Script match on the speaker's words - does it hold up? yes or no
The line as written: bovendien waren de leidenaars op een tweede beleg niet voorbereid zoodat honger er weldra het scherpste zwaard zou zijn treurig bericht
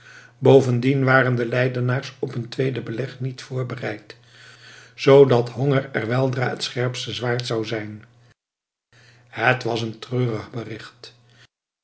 no